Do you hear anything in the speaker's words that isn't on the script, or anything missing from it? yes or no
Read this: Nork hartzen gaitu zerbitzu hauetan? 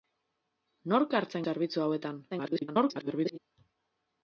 yes